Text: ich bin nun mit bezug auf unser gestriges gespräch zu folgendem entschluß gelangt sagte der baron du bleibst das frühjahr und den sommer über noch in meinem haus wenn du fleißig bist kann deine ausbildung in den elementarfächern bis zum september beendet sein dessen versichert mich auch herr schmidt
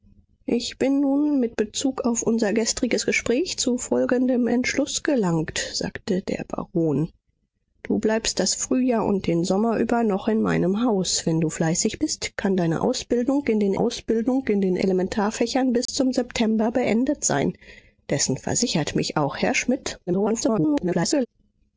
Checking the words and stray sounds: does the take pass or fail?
fail